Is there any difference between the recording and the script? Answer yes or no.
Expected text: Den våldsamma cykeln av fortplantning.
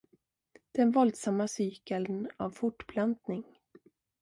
no